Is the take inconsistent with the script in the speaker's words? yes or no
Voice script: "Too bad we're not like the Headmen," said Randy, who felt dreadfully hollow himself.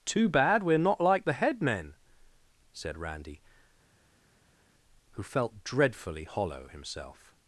no